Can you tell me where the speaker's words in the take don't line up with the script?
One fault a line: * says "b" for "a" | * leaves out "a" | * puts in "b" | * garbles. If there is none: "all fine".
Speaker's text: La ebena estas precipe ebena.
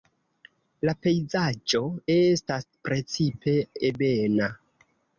* says "pejzaĝo" for "ebena"